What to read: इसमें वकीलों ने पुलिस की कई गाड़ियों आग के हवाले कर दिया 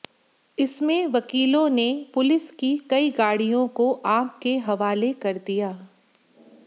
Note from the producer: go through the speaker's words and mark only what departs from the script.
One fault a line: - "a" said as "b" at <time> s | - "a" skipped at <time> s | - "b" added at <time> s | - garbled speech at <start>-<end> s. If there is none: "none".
- "को" added at 3.8 s